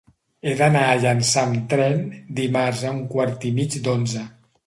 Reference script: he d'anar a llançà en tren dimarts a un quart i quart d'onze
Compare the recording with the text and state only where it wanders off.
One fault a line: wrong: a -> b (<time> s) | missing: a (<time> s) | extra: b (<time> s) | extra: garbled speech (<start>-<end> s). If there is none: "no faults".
wrong: en -> amb (1.5 s)
wrong: quart -> mig (3.6 s)